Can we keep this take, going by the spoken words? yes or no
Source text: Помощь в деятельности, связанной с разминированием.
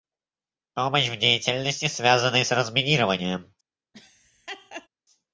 yes